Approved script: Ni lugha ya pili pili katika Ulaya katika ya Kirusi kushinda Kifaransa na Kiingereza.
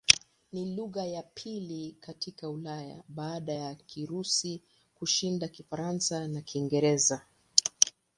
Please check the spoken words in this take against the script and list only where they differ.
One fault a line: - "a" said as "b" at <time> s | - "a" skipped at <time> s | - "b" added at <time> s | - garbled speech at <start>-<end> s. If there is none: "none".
- "pili" skipped at 1.9 s
- "katika" said as "baada" at 3.1 s